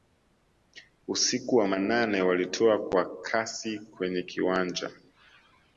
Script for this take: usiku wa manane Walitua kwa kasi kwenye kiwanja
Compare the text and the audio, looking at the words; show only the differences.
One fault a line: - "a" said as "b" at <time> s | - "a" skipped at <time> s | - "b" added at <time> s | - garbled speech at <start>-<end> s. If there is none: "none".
none